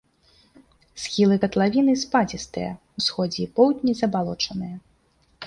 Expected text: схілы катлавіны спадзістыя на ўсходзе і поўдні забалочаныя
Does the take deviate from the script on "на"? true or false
true